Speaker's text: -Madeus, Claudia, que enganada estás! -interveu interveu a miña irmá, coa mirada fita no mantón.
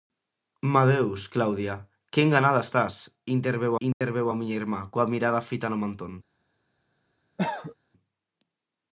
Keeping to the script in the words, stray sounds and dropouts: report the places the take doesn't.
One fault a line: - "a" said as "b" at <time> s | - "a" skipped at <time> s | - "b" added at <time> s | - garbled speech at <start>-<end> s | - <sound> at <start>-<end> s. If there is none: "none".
- dropout at 3.9-4.0 s
- cough at 7.4-7.8 s